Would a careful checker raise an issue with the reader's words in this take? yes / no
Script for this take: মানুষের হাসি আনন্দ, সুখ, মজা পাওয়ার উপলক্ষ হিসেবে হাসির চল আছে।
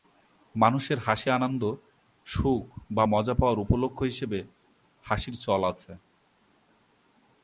yes